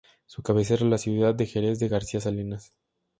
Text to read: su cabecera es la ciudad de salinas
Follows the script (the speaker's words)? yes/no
no